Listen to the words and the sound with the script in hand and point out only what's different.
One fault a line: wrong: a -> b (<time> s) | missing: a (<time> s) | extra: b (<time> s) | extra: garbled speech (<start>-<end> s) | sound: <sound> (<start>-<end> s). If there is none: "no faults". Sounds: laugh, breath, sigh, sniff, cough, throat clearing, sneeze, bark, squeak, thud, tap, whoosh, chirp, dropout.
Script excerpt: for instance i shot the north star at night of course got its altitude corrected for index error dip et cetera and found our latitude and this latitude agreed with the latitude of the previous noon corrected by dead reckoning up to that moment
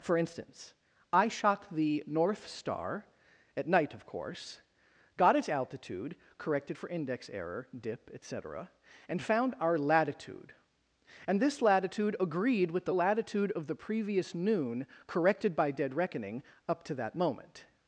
no faults